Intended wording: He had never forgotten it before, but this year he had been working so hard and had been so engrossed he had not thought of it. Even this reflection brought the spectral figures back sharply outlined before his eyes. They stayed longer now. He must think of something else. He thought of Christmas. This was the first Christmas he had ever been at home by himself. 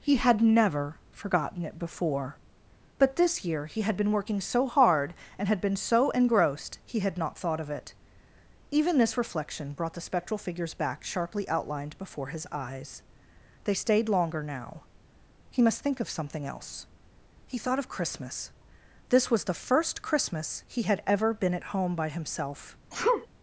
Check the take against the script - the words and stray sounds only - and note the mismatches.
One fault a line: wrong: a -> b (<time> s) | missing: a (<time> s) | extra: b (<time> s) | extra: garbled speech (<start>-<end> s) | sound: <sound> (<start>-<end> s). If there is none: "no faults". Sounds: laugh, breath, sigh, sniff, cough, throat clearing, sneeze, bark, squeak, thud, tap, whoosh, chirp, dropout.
sound: sneeze (22.9-23.3 s)